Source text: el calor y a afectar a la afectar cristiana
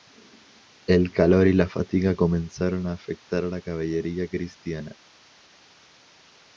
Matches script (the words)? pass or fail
fail